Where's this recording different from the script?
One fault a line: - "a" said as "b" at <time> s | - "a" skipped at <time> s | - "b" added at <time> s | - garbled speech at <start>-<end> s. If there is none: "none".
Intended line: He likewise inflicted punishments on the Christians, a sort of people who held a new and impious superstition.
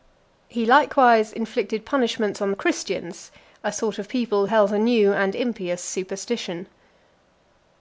- "who" skipped at 4.5 s